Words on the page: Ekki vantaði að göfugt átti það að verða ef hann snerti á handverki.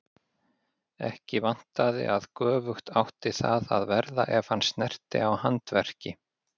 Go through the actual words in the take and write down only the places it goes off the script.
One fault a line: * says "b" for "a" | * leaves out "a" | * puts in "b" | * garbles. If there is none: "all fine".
all fine